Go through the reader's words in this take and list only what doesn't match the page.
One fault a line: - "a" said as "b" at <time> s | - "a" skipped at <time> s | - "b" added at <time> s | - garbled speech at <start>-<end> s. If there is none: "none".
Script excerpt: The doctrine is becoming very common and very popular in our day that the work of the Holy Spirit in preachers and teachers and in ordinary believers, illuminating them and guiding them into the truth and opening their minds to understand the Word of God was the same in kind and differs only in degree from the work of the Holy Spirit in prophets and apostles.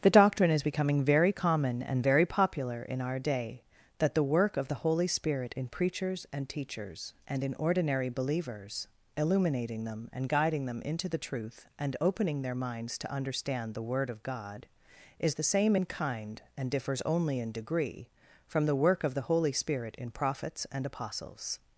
- "was" said as "is" at 15.2 s